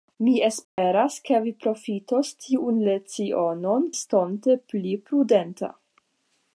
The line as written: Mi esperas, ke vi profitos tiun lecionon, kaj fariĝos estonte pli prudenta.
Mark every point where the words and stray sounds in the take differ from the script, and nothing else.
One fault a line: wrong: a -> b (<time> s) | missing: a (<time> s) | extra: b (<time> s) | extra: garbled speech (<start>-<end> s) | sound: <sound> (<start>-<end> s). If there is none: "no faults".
sound: dropout (0.6-0.8 s)
missing: kaj fariĝos (3.9 s)